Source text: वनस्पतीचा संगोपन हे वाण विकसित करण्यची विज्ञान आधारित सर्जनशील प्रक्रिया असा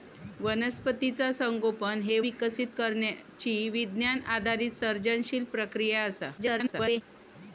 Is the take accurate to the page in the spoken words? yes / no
no